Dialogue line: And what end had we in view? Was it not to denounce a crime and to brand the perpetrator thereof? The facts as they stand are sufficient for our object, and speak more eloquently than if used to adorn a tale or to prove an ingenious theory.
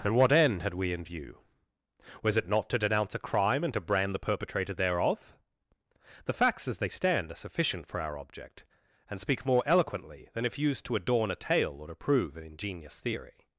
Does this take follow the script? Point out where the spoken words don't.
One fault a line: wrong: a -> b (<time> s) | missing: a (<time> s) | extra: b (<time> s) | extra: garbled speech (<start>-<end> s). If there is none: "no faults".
no faults